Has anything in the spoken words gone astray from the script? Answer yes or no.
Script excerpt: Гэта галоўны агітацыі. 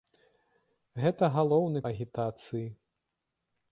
no